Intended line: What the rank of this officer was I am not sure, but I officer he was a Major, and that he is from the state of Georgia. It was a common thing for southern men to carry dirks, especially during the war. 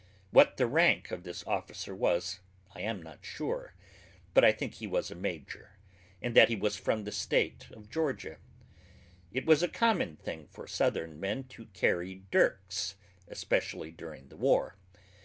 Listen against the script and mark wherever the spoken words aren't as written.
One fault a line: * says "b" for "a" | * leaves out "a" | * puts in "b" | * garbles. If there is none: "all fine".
* says "think" for "officer"
* says "was" for "is"